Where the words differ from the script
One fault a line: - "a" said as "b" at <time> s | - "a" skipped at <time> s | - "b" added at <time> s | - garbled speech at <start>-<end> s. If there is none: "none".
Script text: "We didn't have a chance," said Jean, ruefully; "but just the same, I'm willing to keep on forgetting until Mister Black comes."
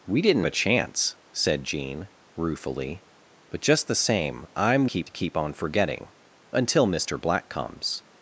- "have" skipped at 0.5 s
- "willing" said as "keep" at 4.8 s